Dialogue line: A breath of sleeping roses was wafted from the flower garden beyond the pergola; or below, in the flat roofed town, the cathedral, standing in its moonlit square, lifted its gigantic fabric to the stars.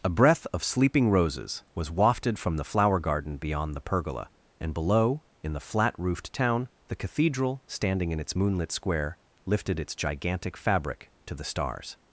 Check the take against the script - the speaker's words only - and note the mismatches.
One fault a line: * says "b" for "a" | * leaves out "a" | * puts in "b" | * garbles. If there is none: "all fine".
* says "and" for "or"